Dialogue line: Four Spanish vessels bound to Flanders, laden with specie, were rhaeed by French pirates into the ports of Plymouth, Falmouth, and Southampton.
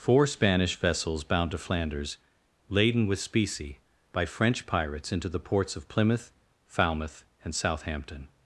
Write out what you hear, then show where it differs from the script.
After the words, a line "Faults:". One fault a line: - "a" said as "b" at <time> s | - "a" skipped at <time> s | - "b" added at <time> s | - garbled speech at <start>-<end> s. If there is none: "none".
Four Spanish vessels bound to Flanders, laden with specie, by French pirates into the ports of Plymouth, Falmouth, and Southampton.
Faults:
- "were rhaeed" skipped at 3.8 s